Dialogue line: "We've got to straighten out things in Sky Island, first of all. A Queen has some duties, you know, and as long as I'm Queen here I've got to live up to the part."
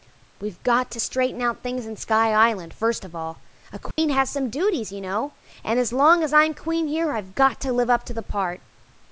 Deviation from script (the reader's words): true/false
false